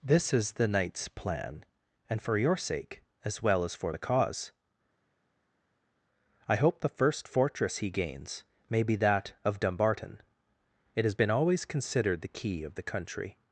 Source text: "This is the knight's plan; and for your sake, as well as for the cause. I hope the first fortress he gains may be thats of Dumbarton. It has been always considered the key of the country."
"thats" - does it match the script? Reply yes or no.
no